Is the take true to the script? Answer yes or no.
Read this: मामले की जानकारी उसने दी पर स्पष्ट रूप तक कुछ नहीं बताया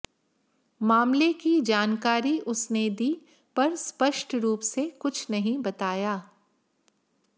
no